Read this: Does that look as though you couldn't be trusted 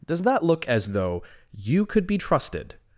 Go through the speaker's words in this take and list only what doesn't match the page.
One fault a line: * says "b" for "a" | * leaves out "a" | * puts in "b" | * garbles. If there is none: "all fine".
* says "could" for "couldn't"